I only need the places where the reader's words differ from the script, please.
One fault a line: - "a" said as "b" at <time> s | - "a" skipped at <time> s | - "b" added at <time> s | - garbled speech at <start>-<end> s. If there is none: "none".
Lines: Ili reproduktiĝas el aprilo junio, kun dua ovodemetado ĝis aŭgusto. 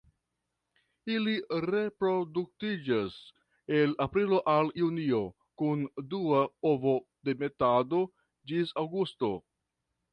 - "al" added at 4.6 s